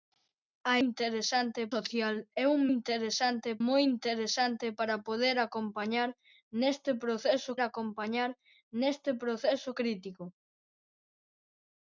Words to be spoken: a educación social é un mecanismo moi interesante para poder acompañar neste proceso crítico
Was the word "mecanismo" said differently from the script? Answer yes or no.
yes